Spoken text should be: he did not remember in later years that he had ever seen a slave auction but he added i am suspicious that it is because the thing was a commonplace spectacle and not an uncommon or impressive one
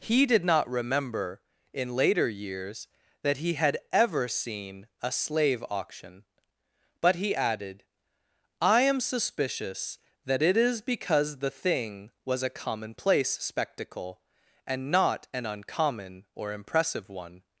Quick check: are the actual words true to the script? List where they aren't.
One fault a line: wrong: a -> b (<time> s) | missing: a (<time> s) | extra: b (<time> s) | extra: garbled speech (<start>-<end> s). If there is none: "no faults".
no faults